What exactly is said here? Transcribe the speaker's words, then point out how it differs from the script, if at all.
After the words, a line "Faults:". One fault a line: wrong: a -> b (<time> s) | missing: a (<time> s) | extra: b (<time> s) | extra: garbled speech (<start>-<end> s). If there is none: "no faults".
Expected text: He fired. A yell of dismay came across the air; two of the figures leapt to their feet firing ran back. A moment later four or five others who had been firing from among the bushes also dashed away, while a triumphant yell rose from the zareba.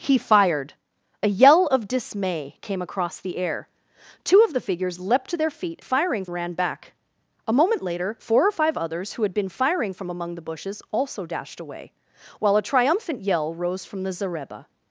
He fired. A yell of dismay came across the air; two of the figures leapt to their feet firing ran back. A moment later four or five others who had been firing from among the bushes also dashed away, while a triumphant yell rose from the zareba.
Faults:
no faults